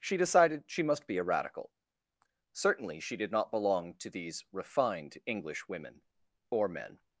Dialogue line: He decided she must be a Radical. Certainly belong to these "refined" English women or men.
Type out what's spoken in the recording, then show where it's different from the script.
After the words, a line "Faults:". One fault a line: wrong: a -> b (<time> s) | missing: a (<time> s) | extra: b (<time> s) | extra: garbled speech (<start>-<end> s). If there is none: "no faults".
She decided she must be a Radical. Certainly she did not belong to these "refined" English women or men.
Faults:
wrong: He -> She (0.0 s)
extra: she did not (3.0 s)